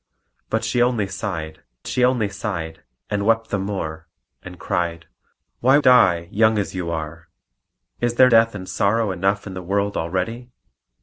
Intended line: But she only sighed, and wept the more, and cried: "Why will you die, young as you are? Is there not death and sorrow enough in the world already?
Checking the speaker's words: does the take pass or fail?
fail